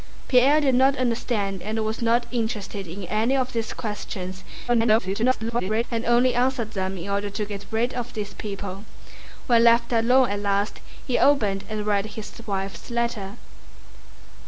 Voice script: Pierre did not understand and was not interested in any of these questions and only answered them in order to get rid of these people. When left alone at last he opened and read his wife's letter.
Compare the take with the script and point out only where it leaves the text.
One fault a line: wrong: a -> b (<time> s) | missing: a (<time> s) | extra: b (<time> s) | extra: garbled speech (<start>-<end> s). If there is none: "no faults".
extra: garbled speech (4.7-5.8 s)